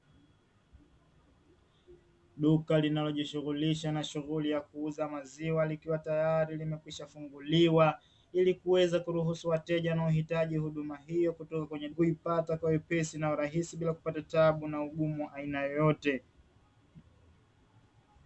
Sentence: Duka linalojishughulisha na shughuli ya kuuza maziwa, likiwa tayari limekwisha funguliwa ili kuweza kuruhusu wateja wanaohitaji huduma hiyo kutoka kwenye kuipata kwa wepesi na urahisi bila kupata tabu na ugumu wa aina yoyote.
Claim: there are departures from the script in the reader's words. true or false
false